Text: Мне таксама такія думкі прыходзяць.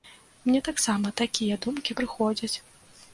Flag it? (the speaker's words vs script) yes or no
no